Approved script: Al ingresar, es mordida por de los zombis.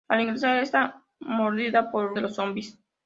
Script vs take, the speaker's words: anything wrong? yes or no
no